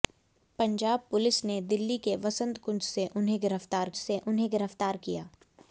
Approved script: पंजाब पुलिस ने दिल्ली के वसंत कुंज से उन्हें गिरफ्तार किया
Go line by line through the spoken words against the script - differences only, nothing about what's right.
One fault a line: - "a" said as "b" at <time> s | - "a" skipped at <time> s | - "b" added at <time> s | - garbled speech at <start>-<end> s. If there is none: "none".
- "से उन्हें गिरफ्तार" added at 4.0 s